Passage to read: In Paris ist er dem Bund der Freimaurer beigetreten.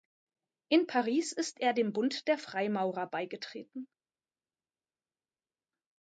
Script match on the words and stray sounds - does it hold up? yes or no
yes